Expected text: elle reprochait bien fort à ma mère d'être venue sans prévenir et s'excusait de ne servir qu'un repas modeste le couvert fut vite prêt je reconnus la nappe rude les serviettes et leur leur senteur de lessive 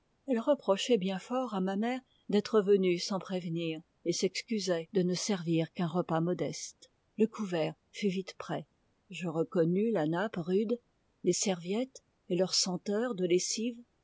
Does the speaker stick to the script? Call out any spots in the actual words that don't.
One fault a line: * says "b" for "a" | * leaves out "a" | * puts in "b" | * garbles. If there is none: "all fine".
* leaves out "leur"